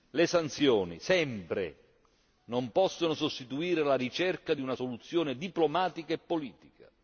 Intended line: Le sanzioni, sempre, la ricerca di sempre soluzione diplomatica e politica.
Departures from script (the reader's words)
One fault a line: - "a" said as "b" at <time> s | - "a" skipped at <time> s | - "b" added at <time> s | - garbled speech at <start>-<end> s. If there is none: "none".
- "non possono sostituire" added at 2.5 s
- "sempre" said as "una" at 4.6 s